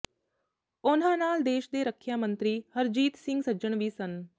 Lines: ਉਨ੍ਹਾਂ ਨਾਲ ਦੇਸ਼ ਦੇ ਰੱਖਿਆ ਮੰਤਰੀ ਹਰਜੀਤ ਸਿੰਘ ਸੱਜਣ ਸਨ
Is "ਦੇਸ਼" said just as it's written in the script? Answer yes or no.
yes